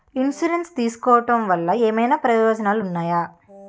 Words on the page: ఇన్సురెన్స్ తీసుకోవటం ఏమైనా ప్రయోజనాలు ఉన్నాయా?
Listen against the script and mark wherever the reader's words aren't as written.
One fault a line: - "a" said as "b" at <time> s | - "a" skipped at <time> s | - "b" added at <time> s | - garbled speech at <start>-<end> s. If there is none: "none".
- "వల్ల" added at 1.5 s